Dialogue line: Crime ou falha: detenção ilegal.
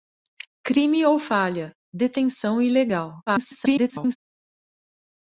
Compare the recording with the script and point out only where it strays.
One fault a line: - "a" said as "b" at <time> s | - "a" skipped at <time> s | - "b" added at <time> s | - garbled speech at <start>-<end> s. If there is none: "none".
- garbled speech at 3.3-4.2 s